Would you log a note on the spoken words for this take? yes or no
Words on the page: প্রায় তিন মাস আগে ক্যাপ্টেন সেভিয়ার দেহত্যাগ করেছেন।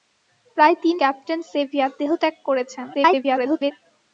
yes